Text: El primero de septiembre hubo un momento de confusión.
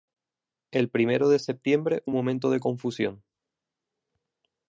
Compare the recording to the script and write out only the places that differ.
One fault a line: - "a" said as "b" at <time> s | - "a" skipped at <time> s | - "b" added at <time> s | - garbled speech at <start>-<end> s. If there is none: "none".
- "hubo" skipped at 2.0 s